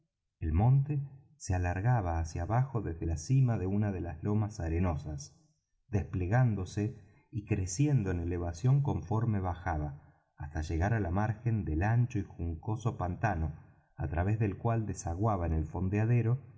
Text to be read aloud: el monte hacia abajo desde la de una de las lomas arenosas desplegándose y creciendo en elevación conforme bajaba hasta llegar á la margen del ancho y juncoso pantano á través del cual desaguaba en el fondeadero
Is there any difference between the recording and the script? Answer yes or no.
yes